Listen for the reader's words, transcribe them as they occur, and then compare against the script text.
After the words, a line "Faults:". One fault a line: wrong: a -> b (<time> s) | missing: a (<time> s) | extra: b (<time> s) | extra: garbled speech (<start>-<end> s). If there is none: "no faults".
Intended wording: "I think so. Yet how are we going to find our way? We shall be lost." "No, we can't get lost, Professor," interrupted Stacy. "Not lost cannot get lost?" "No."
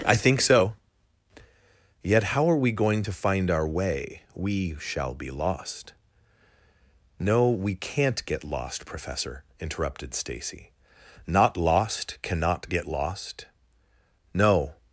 "I think so. Yet how are we going to find our way? We shall be lost." "No, we can't get lost, Professor," interrupted Stacy. "Not lost cannot get lost?" "No."
Faults:
no faults